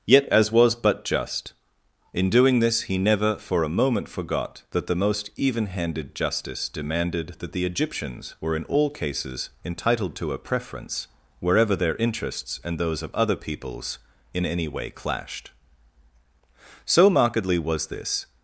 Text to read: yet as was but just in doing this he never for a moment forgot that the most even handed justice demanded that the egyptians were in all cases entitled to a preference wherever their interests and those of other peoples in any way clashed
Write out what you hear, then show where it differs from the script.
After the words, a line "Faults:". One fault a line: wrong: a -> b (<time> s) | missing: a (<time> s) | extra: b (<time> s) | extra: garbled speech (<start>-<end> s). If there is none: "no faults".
yet as was but just in doing this he never for a moment forgot that the most even handed justice demanded that the egyptians were in all cases entitled to a preference wherever their interests and those of other peoples in any way clashed so markedly was this
Faults:
extra: so markedly was this (16.9 s)